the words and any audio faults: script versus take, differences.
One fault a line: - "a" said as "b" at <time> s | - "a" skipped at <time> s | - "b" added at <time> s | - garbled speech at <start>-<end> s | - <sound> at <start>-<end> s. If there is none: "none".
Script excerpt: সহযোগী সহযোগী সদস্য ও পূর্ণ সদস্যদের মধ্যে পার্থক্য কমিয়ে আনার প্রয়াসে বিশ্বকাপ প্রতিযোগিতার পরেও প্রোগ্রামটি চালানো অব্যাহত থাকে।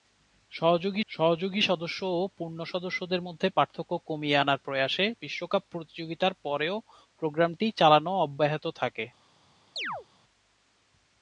- chirp at 9.8-10.1 s